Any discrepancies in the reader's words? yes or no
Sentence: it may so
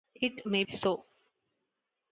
no